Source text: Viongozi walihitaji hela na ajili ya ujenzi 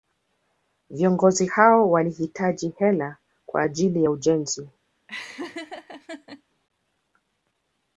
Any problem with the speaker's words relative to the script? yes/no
yes